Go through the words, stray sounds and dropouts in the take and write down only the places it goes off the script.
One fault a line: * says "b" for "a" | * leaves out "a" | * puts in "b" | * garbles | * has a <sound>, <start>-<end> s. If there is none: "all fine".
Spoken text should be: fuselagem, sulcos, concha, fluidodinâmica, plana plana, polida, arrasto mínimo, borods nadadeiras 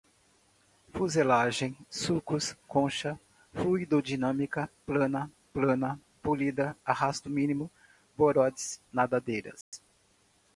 * has a dropout, 9.6-9.7 s